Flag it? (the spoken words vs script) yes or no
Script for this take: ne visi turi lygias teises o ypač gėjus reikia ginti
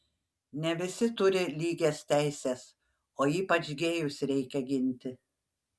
no